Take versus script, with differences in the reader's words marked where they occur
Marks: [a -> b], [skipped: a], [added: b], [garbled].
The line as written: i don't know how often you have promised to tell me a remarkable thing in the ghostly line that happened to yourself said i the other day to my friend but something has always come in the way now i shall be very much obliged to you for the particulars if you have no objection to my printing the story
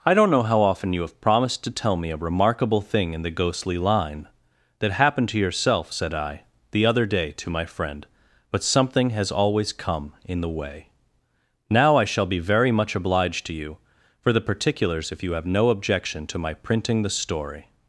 i don't know how often you have promised to tell me a remarkable thing in the ghostly line that happened to yourself said i the other day to my friend but something has always come in the way now i shall be very much obliged to you for the particulars if you have no objection to my printing the story